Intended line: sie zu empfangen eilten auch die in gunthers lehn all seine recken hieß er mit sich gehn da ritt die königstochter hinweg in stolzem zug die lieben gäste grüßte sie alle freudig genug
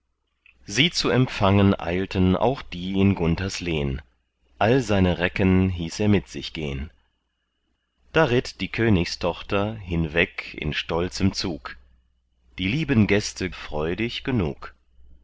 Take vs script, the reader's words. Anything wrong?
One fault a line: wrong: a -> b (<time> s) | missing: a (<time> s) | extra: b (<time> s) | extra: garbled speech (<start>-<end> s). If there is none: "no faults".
missing: grüßte sie alle (13.5 s)